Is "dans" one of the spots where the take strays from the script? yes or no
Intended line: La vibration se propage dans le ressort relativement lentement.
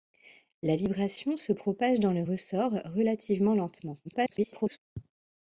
no